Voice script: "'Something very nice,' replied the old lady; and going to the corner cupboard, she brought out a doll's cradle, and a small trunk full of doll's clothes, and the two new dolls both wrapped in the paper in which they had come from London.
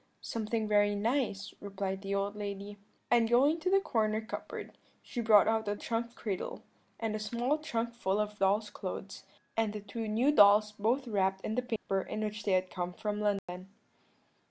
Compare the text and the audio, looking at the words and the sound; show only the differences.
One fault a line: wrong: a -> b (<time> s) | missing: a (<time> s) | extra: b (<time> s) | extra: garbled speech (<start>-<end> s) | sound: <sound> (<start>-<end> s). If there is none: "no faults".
wrong: doll's -> trunk (5.8 s)
sound: dropout (11.8-11.9 s)
sound: dropout (13.4-13.5 s)